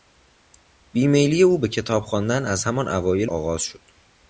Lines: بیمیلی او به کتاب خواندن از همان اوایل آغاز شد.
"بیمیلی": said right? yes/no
yes